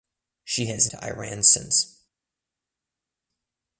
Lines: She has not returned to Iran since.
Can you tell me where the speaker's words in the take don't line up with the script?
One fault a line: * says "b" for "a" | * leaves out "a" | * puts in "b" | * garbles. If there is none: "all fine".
* leaves out "not returned"